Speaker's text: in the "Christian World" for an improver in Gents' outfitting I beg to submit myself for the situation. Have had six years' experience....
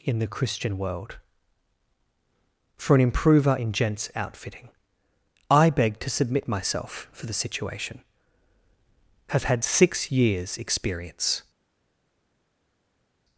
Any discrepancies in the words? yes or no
no